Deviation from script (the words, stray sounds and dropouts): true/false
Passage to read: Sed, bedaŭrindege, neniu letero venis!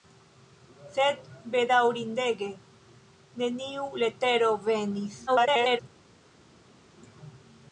true